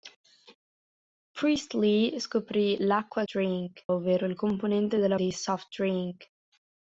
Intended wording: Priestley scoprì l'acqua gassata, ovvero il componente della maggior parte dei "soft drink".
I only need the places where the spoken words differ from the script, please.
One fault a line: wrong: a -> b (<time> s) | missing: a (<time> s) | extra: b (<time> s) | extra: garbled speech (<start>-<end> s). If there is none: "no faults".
wrong: gassata -> drink (3.3 s)
missing: maggior parte (5.2 s)